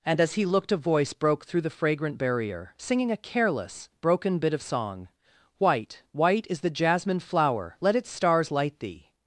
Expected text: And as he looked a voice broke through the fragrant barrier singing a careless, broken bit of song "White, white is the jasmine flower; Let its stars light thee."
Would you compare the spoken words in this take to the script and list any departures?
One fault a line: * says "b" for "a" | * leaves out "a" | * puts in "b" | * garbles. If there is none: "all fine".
all fine